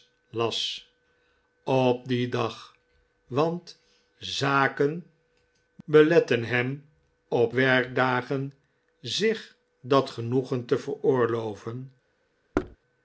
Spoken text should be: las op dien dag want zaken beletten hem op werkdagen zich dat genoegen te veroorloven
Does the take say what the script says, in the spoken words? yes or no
yes